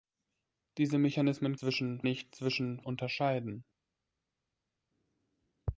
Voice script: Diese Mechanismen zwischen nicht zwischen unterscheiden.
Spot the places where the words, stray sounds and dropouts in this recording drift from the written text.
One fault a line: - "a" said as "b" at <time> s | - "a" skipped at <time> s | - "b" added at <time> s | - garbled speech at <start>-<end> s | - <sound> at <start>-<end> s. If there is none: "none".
none